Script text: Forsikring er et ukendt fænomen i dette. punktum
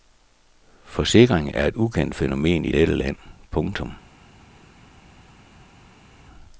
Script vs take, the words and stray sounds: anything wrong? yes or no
yes